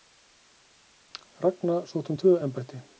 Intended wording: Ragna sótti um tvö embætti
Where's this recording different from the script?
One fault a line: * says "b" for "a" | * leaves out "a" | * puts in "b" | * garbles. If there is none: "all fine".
all fine